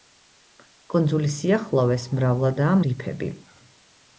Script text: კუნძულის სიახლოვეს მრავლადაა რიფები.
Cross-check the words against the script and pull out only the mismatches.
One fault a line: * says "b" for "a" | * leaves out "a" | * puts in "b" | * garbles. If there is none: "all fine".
all fine